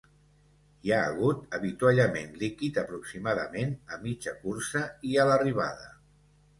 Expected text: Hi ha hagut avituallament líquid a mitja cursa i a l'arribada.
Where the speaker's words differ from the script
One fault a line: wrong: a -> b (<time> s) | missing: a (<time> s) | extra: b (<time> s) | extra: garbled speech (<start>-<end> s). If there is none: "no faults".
extra: aproximadament (2.8 s)